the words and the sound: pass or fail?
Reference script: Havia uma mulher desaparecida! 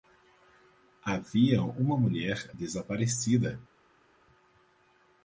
pass